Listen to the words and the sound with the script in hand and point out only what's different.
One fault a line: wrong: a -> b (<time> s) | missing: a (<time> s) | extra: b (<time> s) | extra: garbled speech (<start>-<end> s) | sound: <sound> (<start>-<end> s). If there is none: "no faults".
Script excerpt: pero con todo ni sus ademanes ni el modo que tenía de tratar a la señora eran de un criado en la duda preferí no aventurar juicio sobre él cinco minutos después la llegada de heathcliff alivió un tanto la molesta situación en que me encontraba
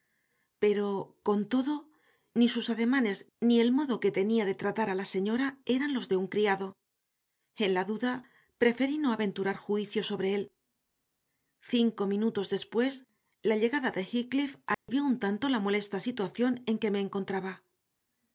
extra: los (5.9 s)
sound: dropout (14.7-14.9 s)